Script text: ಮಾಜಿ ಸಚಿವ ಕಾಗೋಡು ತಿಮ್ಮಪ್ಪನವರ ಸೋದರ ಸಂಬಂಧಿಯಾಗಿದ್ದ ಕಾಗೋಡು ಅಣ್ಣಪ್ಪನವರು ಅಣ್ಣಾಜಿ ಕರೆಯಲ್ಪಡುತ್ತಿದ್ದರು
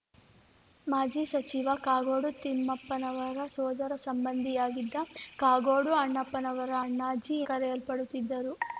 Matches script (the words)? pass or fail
pass